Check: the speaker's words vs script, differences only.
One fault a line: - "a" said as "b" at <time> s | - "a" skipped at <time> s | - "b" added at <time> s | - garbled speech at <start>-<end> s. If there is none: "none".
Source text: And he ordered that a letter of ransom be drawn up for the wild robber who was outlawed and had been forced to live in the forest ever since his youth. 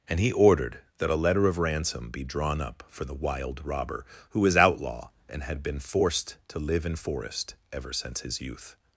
- "outlawed" said as "outlaw" at 4.6 s
- "the" skipped at 7.0 s